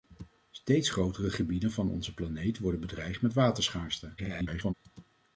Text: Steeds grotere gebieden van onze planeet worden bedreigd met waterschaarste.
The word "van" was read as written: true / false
true